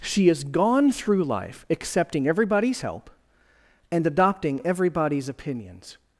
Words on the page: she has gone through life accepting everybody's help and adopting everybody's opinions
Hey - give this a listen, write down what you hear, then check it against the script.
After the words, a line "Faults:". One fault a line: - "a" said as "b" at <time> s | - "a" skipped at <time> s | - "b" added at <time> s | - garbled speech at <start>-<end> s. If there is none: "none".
she has gone through life accepting everybody's help and adopting everybody's opinions
Faults:
none